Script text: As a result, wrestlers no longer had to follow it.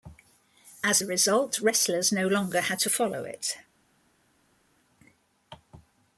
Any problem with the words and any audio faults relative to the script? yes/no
no